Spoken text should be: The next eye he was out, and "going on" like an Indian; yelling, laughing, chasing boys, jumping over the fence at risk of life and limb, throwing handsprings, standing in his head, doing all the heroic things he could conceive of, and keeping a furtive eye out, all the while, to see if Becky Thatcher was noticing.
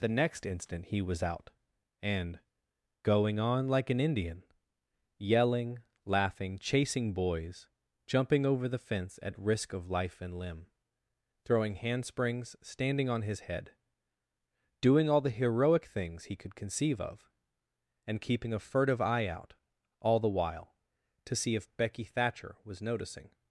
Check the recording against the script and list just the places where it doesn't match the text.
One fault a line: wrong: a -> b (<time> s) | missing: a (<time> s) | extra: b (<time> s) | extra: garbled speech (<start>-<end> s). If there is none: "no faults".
wrong: eye -> instant (0.5 s)
wrong: in -> on (13.1 s)